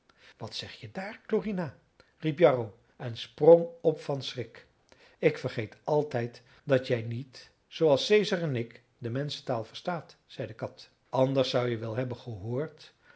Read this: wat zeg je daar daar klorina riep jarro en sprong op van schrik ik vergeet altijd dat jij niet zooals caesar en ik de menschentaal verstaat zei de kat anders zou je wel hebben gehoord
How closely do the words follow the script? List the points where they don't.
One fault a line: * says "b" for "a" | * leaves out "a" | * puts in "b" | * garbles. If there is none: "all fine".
* leaves out "daar"